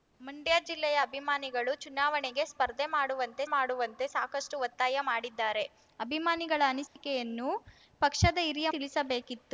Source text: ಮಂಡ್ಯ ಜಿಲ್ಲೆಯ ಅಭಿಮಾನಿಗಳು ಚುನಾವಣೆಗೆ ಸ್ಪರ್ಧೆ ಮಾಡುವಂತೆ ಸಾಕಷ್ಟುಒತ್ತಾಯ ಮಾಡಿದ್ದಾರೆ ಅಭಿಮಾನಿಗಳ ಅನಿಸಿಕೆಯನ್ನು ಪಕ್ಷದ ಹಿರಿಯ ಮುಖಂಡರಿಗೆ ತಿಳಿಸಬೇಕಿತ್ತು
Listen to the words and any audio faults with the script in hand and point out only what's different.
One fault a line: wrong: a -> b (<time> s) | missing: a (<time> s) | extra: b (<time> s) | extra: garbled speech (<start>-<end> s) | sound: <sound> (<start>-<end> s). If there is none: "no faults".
extra: ಮಾಡುವಂತೆ (3.5 s)
sound: dropout (6.9-7.0 s)
missing: ಮುಖಂಡರಿಗೆ (8.7 s)